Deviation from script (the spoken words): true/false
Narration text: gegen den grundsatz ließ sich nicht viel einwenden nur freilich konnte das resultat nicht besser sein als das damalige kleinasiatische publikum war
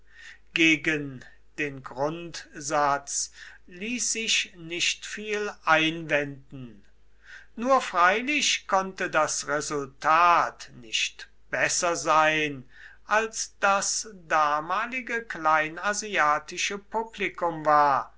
false